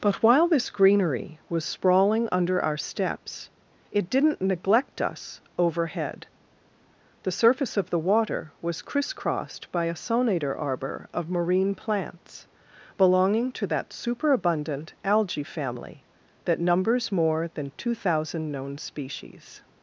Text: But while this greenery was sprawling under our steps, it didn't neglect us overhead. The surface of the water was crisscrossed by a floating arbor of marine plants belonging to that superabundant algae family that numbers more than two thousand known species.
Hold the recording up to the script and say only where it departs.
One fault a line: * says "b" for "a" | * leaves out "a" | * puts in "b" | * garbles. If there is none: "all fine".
* says "sonator" for "floating"